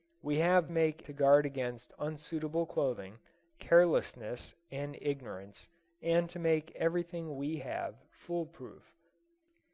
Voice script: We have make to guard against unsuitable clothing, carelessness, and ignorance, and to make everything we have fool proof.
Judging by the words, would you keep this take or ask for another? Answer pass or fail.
pass